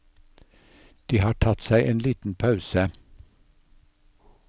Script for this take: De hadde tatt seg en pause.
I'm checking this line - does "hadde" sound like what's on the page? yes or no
no